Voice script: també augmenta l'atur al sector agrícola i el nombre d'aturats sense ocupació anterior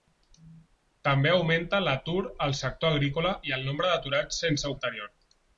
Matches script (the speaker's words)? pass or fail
fail